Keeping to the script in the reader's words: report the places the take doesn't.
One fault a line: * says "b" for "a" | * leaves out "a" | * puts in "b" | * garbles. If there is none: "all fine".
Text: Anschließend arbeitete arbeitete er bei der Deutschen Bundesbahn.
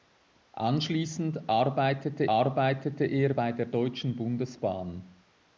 all fine